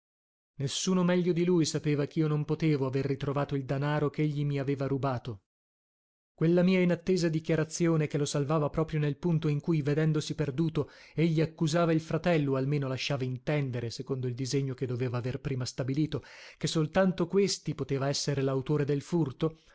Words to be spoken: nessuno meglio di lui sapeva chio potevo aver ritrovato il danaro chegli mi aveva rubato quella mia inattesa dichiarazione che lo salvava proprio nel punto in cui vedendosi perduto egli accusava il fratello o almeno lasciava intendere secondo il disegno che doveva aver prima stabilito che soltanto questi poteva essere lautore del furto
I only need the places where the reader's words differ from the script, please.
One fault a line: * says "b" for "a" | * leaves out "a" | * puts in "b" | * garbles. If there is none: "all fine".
* puts in "non"